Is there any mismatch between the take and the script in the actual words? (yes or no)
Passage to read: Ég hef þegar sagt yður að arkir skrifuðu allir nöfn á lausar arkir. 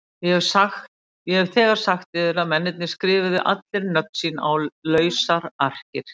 yes